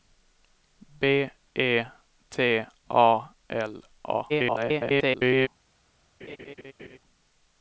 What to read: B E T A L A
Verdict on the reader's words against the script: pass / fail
fail